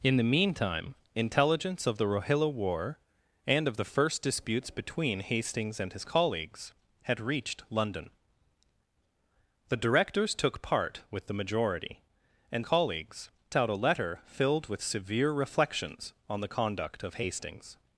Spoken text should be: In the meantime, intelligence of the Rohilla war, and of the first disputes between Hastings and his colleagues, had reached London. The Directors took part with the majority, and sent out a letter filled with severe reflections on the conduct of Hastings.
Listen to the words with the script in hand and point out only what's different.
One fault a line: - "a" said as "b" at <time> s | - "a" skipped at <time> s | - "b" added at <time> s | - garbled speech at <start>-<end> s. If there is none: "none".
- "sent" said as "colleagues" at 12.6 s